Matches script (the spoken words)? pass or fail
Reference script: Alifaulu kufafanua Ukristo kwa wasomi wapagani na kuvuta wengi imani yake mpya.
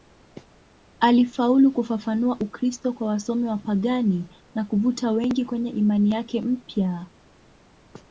fail